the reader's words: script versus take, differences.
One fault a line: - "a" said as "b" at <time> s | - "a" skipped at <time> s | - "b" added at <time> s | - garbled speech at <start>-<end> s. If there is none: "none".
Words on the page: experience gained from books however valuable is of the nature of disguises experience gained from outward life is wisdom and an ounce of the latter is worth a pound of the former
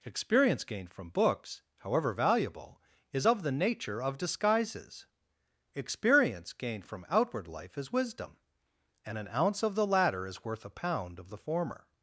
none